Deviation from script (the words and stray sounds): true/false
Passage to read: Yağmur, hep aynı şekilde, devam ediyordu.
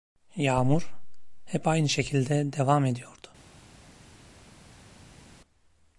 false